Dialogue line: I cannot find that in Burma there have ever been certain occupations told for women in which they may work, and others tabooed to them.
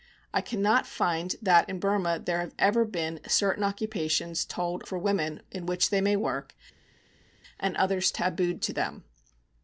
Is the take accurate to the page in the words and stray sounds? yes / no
yes